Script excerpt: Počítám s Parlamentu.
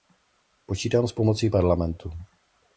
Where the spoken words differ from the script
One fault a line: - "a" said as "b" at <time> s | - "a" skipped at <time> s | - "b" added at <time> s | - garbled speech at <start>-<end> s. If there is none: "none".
- "pomocí" added at 1.1 s